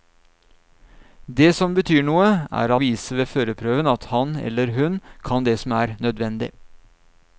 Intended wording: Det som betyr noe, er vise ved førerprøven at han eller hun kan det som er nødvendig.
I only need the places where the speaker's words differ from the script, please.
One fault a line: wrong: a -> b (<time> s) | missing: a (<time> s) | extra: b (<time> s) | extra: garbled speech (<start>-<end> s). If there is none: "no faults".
no faults